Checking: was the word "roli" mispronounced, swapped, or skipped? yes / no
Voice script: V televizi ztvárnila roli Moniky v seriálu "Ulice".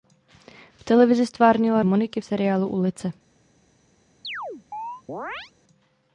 yes